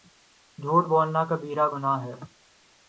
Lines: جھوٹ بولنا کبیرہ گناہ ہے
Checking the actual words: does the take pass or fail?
pass